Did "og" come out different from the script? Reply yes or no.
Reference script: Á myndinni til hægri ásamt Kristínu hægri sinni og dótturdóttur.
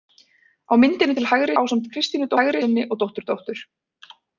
no